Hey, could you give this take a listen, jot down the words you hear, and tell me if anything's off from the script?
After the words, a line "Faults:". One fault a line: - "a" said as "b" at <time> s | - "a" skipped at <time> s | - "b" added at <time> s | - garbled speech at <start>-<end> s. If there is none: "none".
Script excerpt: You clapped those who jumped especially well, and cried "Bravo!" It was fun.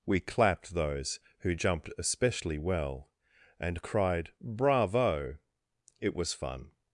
We clapped those who jumped especially well, and cried "Bravo!" It was fun.
Faults:
- "You" said as "We" at 0.1 s